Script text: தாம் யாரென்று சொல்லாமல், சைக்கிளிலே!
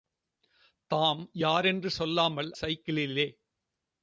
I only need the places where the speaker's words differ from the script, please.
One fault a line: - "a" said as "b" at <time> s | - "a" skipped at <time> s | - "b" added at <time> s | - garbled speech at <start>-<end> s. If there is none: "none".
none